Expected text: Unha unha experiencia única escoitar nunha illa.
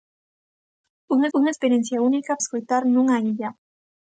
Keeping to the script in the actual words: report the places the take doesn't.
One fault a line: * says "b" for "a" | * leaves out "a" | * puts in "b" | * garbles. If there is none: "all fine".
all fine